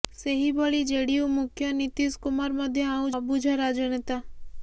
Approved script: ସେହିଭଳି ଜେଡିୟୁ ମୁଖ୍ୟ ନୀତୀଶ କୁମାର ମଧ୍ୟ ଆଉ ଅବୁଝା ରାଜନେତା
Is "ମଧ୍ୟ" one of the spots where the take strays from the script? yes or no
no